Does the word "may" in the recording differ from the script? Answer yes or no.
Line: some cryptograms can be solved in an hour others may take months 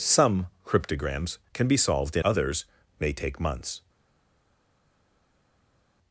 no